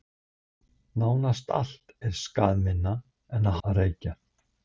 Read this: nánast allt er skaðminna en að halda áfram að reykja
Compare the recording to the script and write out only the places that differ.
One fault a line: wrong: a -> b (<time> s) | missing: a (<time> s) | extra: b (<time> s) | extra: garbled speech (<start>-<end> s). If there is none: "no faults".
missing: halda áfram (3.6 s)